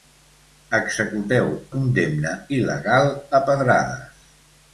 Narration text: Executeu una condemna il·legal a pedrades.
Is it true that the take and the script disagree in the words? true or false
true